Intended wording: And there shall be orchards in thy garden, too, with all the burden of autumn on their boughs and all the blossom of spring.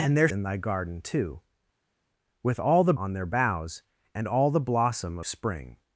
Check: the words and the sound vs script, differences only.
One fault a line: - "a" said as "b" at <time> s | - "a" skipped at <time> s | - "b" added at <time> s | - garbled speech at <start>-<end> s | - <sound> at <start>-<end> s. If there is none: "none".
- "shall be orchards" skipped at 0.3 s
- "burden of autumn" skipped at 2.9 s
- "of" skipped at 5.2 s